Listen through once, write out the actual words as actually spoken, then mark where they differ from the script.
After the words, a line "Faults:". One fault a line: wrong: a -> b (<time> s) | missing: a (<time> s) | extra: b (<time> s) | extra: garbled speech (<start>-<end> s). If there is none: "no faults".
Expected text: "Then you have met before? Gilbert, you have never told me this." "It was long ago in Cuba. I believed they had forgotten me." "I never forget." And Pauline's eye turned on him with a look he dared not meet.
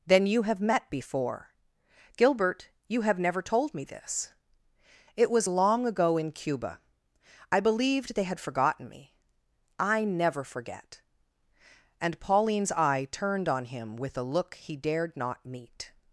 "Then you have met before? Gilbert, you have never told me this." "It was long ago in Cuba. I believed they had forgotten me." "I never forget." And Pauline's eye turned on him with a look he dared not meet.
Faults:
no faults